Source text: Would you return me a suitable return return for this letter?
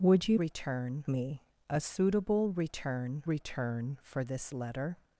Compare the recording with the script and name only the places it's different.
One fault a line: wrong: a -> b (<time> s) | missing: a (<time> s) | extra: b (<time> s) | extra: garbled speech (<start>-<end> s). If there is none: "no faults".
no faults